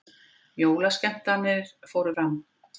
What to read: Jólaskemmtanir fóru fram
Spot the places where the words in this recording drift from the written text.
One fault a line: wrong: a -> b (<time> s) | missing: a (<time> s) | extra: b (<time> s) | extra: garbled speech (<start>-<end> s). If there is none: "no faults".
no faults